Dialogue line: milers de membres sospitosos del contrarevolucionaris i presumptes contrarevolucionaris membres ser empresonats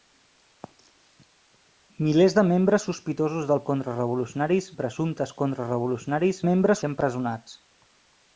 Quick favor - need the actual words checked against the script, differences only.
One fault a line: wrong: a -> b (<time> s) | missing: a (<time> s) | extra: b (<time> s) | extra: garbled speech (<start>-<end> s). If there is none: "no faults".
no faults